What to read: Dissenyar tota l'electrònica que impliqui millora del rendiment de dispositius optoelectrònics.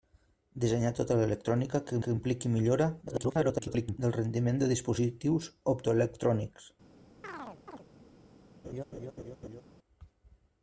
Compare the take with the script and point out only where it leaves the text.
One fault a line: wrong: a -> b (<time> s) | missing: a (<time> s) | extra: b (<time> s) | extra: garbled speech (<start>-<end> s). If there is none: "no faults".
extra: que (2.0 s)
extra: garbled speech (3.1-4.0 s)